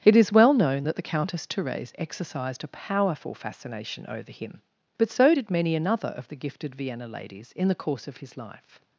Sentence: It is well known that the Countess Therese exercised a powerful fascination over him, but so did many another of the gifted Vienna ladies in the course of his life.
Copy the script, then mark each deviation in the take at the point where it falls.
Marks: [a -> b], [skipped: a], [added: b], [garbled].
It is well known that the Countess Therese exercised a powerful fascination over him, but so did many another of the gifted Vienna ladies in the course of his life.